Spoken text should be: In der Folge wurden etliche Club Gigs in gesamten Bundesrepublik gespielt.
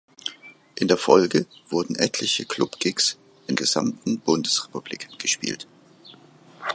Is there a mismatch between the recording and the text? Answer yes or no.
no